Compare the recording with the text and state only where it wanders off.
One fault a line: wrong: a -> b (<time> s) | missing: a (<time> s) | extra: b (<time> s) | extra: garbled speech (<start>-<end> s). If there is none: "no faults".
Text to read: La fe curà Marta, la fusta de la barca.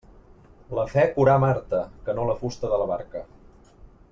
extra: que no (2.1 s)